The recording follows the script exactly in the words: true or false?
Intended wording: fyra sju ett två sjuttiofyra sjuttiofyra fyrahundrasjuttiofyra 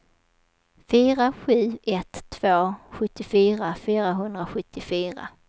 false